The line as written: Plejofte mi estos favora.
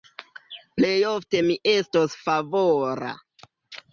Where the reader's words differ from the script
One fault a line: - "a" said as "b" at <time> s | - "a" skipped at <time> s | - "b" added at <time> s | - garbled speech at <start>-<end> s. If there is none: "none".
none